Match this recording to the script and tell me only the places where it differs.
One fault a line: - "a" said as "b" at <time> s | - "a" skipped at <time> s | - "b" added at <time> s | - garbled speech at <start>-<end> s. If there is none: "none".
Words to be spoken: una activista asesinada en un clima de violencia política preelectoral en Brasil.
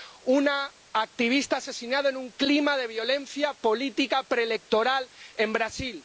none